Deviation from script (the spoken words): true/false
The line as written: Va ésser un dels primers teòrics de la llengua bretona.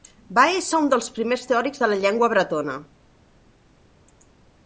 false